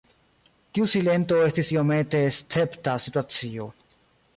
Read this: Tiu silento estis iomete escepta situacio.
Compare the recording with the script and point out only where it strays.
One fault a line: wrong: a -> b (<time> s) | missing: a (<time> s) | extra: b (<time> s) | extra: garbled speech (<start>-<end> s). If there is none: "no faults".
no faults